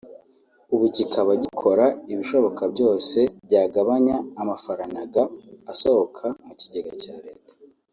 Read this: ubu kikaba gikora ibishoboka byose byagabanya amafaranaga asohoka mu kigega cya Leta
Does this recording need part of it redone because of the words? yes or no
no